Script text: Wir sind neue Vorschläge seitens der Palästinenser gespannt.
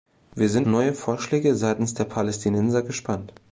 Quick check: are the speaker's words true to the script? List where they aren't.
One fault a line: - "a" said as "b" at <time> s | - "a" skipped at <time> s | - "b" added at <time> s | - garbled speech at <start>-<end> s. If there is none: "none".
none